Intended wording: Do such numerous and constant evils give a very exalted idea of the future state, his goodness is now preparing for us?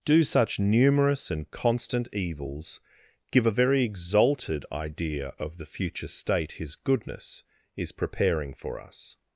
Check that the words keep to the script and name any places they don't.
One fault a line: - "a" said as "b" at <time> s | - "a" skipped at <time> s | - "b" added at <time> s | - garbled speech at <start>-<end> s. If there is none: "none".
- "now" skipped at 7.9 s